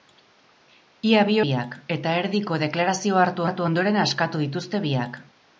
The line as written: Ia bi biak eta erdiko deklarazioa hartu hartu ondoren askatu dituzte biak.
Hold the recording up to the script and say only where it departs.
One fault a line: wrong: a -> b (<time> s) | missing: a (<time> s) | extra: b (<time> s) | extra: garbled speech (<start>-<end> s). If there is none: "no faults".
no faults